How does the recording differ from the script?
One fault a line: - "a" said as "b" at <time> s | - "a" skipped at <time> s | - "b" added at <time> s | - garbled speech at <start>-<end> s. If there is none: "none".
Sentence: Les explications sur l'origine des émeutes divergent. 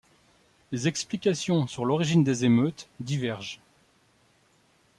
none